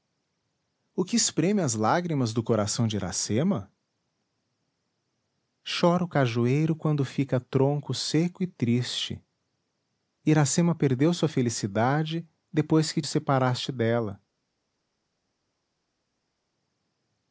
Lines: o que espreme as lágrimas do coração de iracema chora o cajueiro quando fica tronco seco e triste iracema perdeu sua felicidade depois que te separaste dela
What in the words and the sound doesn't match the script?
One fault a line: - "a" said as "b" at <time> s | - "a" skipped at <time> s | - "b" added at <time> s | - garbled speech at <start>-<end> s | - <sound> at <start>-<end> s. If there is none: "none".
- "te" skipped at 13.0 s